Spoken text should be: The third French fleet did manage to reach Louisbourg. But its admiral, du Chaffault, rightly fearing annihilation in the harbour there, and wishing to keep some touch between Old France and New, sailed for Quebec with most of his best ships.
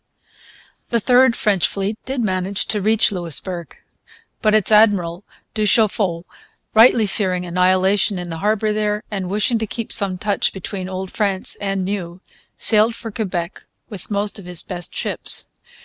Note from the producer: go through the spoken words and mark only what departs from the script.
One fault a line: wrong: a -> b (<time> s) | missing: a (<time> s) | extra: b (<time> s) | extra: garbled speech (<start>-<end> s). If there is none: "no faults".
no faults